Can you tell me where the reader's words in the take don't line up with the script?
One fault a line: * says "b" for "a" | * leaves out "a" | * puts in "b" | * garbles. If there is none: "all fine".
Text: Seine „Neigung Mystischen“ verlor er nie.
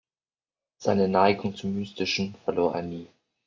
* puts in "zum"